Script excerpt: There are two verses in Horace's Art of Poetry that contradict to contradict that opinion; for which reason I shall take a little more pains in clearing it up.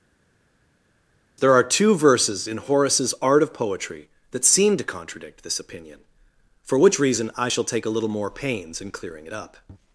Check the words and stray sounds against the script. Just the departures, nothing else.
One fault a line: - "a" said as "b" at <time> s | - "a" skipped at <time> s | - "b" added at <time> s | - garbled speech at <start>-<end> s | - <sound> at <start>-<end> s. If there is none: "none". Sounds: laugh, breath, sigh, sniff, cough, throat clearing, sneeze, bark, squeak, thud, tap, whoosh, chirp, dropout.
- "contradict" said as "seem" at 4.4 s
- "that" said as "this" at 5.4 s